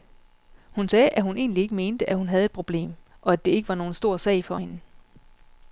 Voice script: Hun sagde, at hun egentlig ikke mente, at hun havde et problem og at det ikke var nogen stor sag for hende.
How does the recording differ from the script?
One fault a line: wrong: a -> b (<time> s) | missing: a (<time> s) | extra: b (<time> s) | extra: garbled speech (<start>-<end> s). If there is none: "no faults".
no faults